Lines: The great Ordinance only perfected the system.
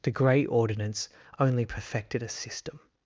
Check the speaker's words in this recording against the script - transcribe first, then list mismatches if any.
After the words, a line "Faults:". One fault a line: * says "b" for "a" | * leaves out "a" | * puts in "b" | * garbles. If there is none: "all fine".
The grey Ordinance only perfected a system.
Faults:
* says "grey" for "great"
* says "a" for "the"